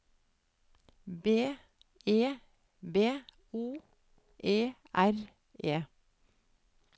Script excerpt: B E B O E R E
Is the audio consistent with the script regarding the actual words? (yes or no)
yes